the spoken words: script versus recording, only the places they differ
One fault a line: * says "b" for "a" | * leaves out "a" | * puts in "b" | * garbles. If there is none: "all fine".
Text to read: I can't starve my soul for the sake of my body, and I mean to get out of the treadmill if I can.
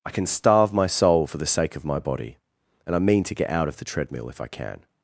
* says "can" for "can't"